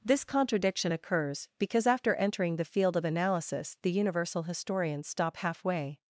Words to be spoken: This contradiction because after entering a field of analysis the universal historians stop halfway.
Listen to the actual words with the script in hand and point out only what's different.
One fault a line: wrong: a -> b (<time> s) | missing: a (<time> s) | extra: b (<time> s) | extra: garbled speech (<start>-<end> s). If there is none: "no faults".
extra: occurs (0.9 s)
wrong: a -> the (2.5 s)